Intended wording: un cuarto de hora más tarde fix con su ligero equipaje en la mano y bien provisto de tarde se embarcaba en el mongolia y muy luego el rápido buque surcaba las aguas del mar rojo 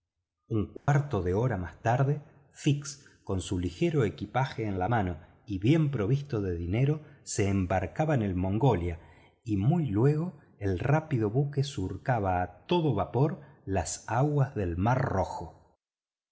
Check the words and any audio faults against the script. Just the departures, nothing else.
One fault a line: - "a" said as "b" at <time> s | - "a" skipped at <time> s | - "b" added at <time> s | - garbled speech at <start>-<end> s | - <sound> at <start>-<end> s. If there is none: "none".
- dropout at 0.8-0.9 s
- "tarde" said as "dinero" at 6.6 s
- "a todo vapor" added at 12.4 s